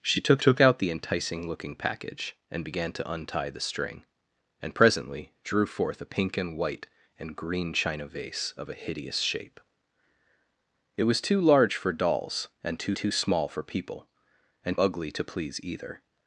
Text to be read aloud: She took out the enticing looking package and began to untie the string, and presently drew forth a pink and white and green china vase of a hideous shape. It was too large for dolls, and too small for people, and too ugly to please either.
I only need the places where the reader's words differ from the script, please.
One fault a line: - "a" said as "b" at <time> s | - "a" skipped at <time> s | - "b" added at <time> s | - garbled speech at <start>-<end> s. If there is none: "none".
- "took" added at 0.4 s
- "too" added at 13.0 s
- "too" skipped at 14.8 s